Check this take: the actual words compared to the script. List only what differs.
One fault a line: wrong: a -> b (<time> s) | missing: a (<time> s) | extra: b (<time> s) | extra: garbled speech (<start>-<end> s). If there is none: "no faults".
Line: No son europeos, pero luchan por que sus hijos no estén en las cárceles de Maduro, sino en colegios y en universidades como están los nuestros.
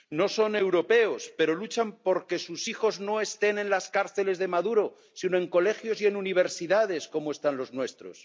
no faults